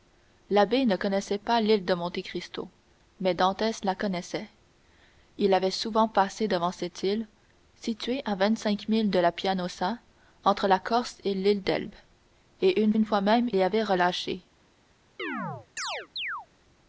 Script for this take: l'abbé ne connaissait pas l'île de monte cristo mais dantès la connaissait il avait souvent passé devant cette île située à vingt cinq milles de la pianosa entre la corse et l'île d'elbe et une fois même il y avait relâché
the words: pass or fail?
fail